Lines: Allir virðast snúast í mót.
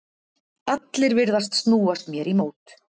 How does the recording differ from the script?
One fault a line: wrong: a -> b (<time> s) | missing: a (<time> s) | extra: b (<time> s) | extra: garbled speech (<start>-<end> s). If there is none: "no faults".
extra: mér (2.1 s)